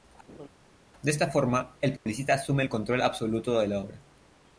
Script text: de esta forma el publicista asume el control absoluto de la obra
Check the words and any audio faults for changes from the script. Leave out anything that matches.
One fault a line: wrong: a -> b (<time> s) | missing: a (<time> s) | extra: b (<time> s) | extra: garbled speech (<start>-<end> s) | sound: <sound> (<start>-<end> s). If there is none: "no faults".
sound: laugh (0.3-0.5 s)
sound: dropout (2.0-2.1 s)